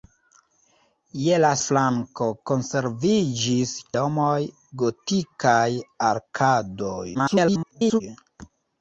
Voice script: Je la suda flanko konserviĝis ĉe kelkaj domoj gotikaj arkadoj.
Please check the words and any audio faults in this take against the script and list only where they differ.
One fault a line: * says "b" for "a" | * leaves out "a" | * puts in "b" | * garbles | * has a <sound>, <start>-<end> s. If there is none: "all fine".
* leaves out "suda"
* leaves out "ĉe kelkaj"
* garbles